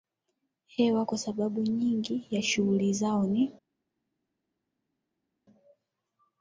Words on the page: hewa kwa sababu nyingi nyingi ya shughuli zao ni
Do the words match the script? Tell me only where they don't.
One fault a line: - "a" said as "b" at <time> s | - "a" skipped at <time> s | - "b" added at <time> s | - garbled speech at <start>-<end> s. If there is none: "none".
- "nyingi" skipped at 2.3 s